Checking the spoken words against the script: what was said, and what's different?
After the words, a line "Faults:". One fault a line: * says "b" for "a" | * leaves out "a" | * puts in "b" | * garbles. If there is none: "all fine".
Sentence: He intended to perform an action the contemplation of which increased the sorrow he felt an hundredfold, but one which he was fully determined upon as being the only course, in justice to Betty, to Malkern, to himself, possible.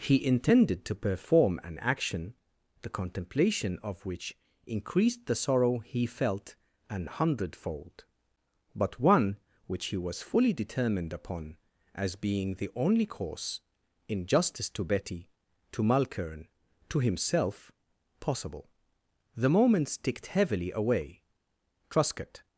He intended to perform an action the contemplation of which increased the sorrow he felt an hundredfold, but one which he was fully determined upon as being the only course, in justice to Betty, to Malkern, to himself, possible. The moments ticked heavily away. Truscott
Faults:
* puts in "The moments ticked heavily away Truscott"